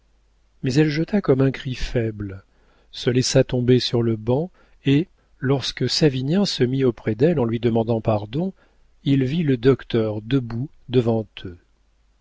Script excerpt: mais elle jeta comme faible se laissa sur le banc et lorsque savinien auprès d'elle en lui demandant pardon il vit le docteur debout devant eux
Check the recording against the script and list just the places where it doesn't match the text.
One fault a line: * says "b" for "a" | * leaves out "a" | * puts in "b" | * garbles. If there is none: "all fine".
* puts in "un cri"
* puts in "tomber"
* puts in "se mit"